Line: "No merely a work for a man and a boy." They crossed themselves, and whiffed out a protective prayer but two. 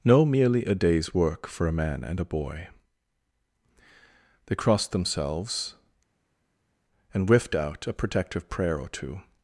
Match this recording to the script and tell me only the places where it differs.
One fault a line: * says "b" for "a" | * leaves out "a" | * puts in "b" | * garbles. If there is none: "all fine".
* puts in "day's"
* says "or" for "but"